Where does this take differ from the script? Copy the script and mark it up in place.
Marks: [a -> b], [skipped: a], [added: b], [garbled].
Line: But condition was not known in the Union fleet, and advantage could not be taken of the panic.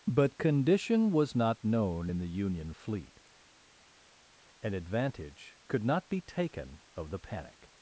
But condition was not known in the Union fleet, and advantage could not be taken of the panic.